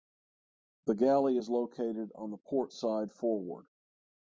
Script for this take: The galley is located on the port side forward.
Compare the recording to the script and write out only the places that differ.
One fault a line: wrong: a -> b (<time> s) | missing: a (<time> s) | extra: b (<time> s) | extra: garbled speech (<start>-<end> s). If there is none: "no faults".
no faults